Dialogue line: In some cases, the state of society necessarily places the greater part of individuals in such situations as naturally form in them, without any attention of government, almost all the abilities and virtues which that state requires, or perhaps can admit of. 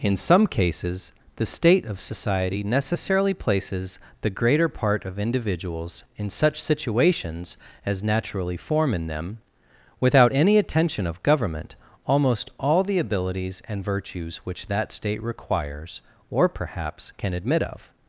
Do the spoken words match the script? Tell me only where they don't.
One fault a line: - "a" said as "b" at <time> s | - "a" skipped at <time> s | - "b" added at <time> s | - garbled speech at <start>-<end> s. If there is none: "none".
none